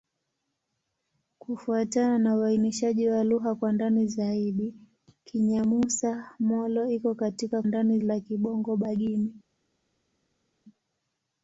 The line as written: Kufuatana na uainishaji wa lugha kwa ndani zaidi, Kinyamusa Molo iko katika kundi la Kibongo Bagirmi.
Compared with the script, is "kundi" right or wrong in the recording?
wrong